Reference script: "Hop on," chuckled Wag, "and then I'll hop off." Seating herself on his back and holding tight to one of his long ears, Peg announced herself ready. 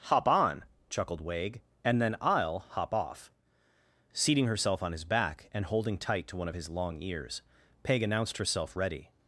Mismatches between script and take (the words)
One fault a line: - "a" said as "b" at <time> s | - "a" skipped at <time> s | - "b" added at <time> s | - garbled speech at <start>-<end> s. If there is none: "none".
none